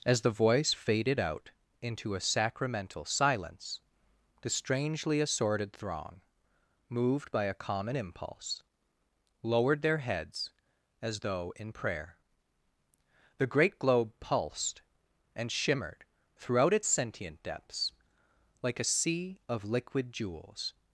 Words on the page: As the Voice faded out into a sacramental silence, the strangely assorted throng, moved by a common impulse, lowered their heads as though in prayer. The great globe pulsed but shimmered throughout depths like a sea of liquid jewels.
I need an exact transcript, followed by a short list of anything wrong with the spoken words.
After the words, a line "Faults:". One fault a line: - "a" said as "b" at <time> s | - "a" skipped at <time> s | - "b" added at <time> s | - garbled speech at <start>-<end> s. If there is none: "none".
As the Voice faded out into a sacramental silence, the strangely assorted throng, moved by a common impulse, lowered their heads as though in prayer. The great globe pulsed and shimmered throughout its sentient depths like a sea of liquid jewels.
Faults:
- "but" said as "and" at 15.4 s
- "its sentient" added at 16.7 s